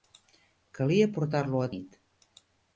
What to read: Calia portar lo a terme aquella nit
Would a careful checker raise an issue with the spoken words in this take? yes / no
yes